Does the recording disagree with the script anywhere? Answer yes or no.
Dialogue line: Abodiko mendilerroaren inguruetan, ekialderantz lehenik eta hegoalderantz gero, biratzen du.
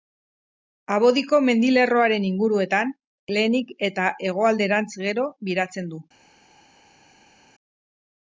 yes